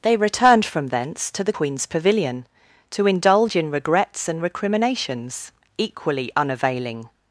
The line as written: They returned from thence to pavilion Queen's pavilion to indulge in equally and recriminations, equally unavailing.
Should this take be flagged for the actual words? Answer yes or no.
yes